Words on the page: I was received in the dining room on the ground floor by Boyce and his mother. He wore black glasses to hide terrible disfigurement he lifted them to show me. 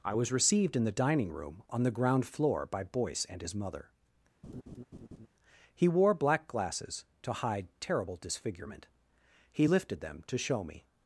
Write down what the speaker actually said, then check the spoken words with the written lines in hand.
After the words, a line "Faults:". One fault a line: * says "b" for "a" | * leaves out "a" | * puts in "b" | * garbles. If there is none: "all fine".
I was received in the dining room on the ground floor by Boyce and his mother. He wore black glasses to hide terrible disfigurement he lifted them to show me.
Faults:
all fine